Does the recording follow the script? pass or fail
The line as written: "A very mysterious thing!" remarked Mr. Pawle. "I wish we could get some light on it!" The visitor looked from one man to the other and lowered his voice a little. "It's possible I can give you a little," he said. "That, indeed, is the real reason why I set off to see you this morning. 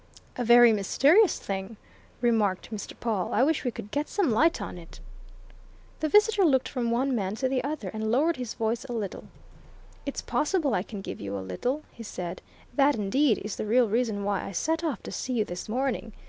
pass